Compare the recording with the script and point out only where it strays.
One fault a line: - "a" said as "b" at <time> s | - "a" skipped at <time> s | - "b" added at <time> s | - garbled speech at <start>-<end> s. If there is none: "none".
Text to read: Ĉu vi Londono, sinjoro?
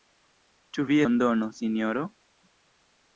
none